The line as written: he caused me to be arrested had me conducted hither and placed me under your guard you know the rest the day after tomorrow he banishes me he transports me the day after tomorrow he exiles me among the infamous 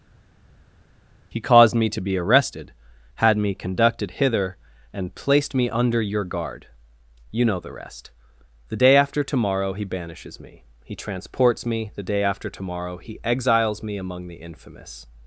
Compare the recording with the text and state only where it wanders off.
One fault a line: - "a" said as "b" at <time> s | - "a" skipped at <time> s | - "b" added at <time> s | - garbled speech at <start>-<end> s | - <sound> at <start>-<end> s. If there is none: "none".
none